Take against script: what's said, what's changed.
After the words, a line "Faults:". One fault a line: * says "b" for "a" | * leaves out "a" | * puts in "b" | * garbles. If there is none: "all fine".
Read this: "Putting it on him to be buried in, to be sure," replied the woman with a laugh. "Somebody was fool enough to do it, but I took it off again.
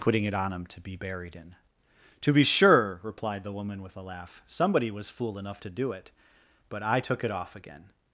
"Putting it on him to be buried in, to be sure," replied the woman with a laugh. "Somebody was fool enough to do it, but I took it off again.
Faults:
all fine